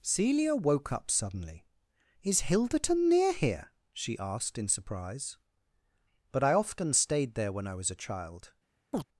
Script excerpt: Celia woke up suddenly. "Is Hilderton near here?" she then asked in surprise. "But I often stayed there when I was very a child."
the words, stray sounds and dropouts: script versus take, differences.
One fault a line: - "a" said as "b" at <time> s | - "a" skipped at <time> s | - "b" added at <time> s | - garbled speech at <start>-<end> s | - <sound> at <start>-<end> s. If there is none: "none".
- "then" skipped at 4.2 s
- "very" skipped at 7.9 s
- chirp at 8.9-9.0 s